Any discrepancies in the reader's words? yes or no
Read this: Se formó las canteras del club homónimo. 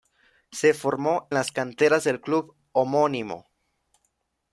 no